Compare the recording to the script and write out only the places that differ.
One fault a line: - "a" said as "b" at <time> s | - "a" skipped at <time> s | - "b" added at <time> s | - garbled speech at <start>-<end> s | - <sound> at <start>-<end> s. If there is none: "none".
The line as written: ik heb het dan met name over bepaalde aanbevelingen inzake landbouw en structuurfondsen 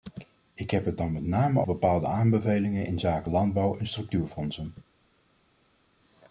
- "over" skipped at 1.6 s